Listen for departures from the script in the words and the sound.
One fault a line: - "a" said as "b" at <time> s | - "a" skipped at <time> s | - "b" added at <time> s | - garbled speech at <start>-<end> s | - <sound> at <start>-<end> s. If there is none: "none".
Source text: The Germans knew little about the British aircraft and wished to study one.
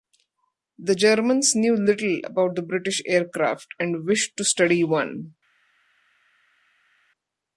none